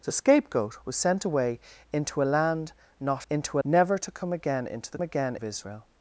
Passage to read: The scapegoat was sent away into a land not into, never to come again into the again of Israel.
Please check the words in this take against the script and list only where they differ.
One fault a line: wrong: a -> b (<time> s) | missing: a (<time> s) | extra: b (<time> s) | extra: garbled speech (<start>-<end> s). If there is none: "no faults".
no faults